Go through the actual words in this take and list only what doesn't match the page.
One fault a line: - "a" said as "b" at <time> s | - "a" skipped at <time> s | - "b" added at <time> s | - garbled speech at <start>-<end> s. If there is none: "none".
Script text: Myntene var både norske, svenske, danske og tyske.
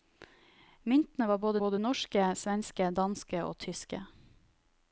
- "både" added at 1.6 s